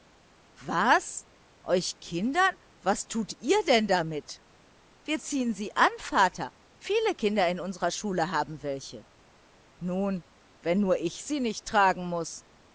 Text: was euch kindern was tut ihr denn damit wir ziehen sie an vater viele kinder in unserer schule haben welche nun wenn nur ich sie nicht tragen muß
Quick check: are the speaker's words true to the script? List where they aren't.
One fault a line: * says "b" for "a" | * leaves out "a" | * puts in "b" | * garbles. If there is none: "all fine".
all fine